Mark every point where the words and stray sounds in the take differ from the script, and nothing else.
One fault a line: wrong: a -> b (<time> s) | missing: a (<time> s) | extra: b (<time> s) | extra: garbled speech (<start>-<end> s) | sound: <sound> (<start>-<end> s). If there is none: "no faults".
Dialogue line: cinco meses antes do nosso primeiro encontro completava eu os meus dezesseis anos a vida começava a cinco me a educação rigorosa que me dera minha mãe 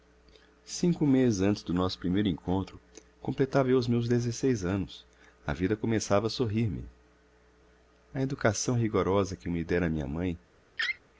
wrong: cinco -> sorrir (6.3 s)
sound: laugh (10.8-11.0 s)